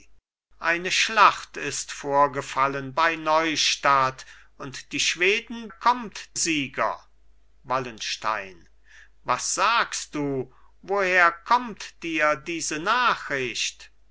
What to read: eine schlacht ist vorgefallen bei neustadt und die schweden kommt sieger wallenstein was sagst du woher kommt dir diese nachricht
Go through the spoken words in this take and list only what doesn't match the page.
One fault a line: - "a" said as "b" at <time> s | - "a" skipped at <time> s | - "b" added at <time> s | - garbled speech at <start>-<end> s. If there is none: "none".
none